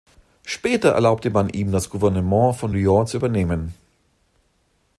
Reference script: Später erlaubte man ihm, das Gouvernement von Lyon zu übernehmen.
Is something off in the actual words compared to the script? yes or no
no